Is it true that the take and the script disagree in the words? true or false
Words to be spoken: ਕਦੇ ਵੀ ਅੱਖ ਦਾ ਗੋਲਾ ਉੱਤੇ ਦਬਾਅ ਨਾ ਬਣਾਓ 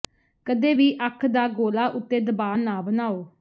false